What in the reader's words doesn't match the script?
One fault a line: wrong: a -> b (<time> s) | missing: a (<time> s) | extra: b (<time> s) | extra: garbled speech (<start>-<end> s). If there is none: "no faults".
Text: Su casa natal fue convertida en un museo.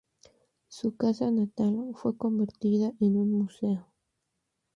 no faults